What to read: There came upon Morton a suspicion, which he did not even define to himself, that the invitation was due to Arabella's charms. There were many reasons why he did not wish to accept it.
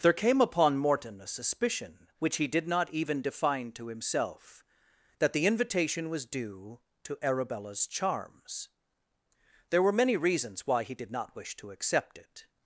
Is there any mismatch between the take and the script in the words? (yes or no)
no